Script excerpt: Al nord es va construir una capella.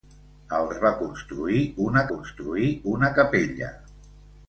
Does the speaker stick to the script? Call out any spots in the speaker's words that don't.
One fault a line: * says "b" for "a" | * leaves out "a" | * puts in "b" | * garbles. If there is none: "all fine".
* leaves out "nord"
* puts in "construir una"